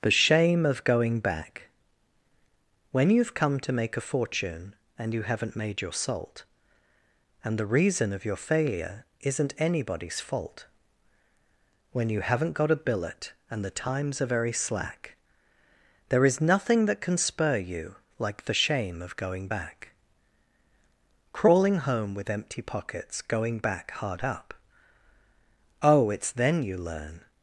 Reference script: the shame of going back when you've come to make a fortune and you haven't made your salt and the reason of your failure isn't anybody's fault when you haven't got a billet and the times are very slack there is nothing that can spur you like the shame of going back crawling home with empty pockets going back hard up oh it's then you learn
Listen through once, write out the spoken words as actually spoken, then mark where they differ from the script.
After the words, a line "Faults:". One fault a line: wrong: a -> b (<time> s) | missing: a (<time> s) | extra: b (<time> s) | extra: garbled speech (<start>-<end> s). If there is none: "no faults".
the shame of going back when you've come to make a fortune and you haven't made your salt and the reason of your failure isn't anybody's fault when you haven't got a billet and the times are very slack there is nothing that can spur you like the shame of going back crawling home with empty pockets going back hard up oh it's then you learn
Faults:
no faults